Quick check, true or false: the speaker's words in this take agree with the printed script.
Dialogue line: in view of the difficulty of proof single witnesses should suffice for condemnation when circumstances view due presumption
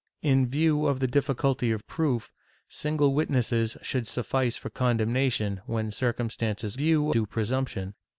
true